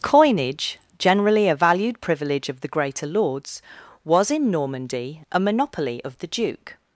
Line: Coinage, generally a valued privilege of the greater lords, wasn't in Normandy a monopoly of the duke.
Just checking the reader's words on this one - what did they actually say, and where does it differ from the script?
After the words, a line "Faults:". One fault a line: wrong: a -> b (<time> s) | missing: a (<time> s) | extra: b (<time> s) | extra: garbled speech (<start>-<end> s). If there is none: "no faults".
Coinage, generally a valued privilege of the greater lords, was in Normandy a monopoly of the duke.
Faults:
wrong: wasn't -> was (4.0 s)